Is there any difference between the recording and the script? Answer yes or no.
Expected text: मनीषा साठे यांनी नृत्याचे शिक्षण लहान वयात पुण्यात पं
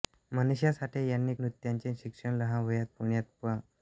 no